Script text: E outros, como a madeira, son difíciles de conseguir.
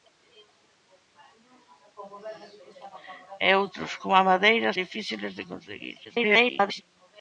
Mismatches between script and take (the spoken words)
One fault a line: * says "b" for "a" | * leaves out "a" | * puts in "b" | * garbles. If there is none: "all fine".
* leaves out "son"
* garbles